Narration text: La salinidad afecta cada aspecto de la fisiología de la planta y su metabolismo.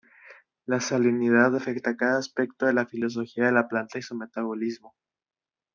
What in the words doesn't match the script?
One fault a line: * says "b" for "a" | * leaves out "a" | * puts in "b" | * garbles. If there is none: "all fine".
all fine